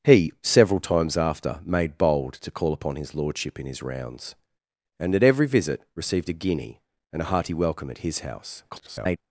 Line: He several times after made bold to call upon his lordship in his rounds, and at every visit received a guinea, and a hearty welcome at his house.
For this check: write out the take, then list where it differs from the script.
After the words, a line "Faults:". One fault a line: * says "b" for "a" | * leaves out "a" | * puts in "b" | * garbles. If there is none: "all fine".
He several times after made bold to call upon his lordship in his rounds, and at every visit received a guinea, and a hearty welcome at his house. [garbled]
Faults:
* garbles